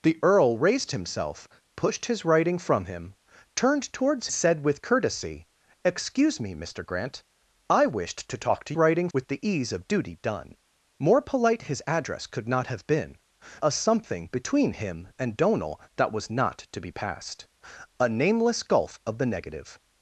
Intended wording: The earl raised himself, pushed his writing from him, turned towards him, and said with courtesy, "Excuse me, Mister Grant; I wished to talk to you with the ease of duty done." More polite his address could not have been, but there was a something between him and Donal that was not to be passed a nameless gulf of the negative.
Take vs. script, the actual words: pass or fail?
fail